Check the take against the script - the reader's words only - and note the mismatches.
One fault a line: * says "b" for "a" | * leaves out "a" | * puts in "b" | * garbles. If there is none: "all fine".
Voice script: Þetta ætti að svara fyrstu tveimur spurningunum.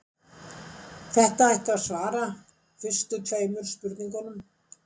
all fine